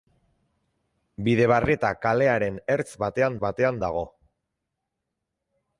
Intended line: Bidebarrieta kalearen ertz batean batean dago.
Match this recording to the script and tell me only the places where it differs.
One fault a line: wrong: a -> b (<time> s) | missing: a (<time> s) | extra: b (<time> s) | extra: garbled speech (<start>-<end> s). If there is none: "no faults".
no faults